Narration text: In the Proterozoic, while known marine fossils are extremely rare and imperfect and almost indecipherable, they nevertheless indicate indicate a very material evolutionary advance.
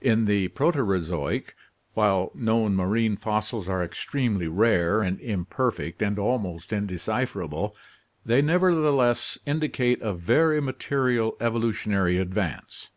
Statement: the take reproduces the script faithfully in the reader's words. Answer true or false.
false